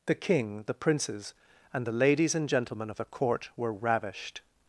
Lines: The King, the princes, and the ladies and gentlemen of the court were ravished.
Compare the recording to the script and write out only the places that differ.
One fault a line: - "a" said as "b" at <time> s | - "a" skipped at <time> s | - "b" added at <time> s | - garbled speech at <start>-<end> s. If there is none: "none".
none